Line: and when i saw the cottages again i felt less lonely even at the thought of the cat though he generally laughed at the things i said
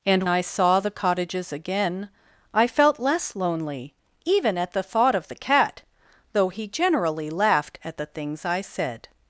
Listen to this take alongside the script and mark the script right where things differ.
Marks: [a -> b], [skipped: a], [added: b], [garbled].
and [skipped: when] i saw the cottages again i felt less lonely even at the thought of the cat though he generally laughed at the things i said